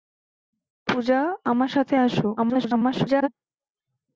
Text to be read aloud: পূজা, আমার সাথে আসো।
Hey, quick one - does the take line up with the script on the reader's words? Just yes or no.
no